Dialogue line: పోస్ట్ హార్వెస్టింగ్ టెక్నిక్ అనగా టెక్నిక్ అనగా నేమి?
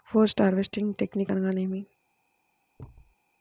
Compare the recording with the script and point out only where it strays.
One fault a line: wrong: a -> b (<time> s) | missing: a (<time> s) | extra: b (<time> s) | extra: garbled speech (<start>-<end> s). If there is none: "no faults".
missing: టెక్నిక్ అనగా (1.5 s)